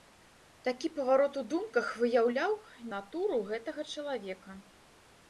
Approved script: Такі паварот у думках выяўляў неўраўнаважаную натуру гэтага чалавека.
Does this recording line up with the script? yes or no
no